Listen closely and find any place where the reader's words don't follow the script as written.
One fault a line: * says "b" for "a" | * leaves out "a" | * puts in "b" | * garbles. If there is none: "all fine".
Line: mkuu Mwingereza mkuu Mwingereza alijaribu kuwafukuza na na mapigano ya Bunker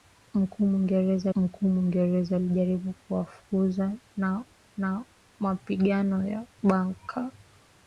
all fine